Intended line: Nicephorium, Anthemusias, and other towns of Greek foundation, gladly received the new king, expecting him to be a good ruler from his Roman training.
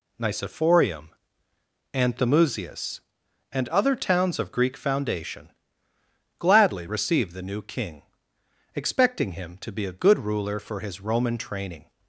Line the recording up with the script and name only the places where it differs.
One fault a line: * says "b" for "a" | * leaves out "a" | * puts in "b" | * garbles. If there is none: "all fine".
* says "for" for "from"